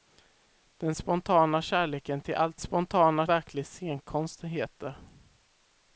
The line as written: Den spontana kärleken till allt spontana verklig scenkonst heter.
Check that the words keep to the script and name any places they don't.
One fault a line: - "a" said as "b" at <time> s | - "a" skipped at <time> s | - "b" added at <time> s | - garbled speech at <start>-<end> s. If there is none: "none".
none